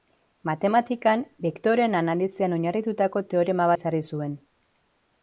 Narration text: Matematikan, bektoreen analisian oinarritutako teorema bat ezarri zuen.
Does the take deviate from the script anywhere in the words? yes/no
yes